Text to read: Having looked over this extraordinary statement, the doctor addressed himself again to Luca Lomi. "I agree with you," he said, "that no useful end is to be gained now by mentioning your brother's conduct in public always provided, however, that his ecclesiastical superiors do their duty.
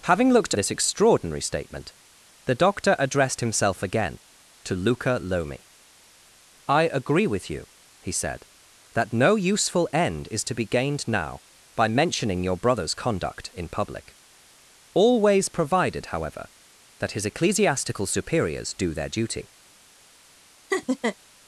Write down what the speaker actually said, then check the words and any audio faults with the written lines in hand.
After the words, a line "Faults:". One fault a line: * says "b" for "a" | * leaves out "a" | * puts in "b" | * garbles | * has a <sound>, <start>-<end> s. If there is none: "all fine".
Having looked this extraordinary statement, the doctor addressed himself again to Luca Lomi. "I agree with you," he said, "that no useful end is to be gained now by mentioning your brother's conduct in public always provided, however, that his ecclesiastical superiors do their duty.
Faults:
* leaves out "over"
* has a laugh, 20.7-21.2 s